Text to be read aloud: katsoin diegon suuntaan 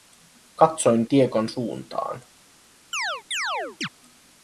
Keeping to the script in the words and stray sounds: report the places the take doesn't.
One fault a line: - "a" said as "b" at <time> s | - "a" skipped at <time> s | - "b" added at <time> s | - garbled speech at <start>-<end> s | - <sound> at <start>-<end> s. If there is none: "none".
- chirp at 2.9-3.9 s